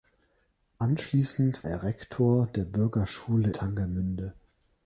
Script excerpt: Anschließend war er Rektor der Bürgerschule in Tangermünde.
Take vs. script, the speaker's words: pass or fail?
fail